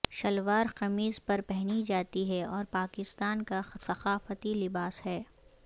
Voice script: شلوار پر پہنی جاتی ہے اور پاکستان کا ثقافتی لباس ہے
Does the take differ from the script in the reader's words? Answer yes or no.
yes